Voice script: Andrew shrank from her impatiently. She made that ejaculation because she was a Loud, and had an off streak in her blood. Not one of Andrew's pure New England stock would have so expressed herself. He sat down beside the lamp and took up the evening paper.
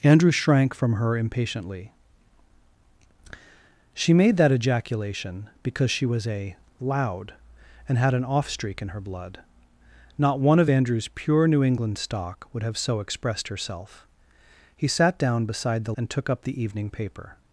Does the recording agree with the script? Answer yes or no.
no